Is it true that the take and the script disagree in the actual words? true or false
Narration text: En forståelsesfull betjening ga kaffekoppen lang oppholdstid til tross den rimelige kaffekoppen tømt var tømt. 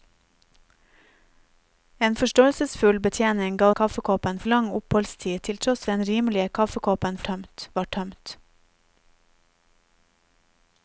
false